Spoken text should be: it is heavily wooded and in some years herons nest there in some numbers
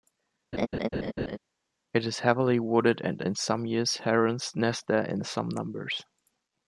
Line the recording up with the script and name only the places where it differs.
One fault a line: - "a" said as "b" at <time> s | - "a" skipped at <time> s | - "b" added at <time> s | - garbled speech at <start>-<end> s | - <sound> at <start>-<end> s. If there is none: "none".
- laugh at 0.5-1.4 s